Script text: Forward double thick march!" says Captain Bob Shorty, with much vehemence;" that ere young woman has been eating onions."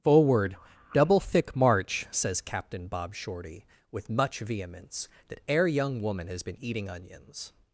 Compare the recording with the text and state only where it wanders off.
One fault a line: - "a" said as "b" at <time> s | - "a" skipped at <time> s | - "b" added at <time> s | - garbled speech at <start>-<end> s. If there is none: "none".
none